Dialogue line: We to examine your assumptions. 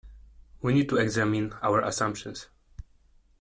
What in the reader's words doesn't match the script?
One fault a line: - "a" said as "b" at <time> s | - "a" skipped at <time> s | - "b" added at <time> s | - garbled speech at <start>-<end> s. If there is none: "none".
- "need" added at 0.7 s
- "your" said as "our" at 1.6 s